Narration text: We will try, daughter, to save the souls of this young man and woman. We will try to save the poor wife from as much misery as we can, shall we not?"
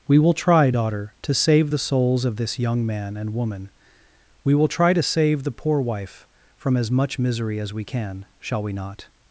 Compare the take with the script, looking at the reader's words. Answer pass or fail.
pass